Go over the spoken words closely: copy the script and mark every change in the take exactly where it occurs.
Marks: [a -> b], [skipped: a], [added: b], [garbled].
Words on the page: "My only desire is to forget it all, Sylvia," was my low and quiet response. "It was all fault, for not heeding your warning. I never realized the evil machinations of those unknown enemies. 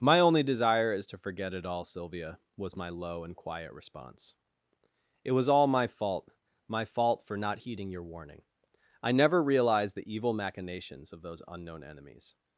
"My only desire is to forget it all, Sylvia," was my low and quiet response. "It was all [added: my fault my] fault, for not heeding your warning. I never realized the evil machinations of those unknown enemies.